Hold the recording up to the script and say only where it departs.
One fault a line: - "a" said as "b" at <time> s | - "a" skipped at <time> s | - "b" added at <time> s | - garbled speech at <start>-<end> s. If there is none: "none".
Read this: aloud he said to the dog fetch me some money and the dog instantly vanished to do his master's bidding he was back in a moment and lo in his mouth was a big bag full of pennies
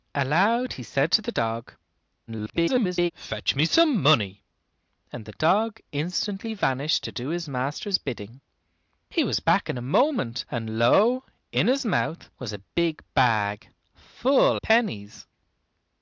- garbled speech at 2.3-3.1 s
- "of" skipped at 14.6 s